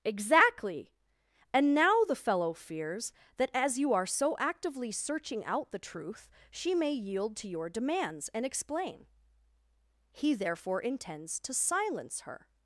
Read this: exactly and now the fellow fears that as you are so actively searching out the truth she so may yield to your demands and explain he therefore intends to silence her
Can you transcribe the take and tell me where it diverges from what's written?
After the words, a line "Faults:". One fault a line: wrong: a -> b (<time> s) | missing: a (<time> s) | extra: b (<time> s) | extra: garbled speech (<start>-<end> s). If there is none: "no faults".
exactly and now the fellow fears that as you are so actively searching out the truth she may yield to your demands and explain he therefore intends to silence her
Faults:
missing: so (6.7 s)